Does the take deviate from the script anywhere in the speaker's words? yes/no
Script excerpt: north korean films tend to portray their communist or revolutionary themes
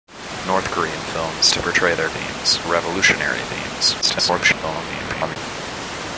yes